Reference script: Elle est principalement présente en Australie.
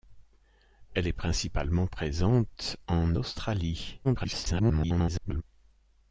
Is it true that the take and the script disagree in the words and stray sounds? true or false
true